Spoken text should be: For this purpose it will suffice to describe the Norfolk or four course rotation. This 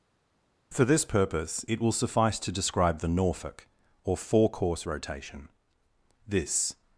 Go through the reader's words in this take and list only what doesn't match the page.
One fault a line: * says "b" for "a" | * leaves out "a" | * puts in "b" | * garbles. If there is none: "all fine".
all fine